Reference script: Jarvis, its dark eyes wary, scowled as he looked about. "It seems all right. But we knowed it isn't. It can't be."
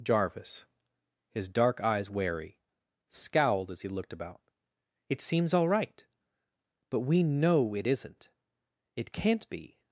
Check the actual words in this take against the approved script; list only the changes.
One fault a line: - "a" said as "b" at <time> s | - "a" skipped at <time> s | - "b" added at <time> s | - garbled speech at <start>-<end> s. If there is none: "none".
- "its" said as "his" at 1.3 s
- "knowed" said as "know" at 7.2 s